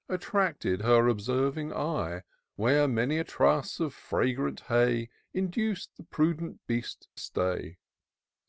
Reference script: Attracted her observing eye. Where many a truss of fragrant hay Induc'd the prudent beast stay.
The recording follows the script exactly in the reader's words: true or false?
true